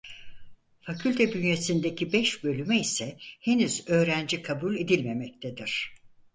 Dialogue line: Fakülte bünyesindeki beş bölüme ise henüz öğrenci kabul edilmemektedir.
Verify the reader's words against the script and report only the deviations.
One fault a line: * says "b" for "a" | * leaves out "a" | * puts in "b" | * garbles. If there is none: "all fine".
all fine